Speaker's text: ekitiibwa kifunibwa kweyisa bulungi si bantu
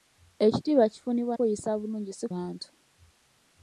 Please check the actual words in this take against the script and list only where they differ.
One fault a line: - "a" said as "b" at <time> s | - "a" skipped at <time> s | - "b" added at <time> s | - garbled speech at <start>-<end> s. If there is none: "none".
none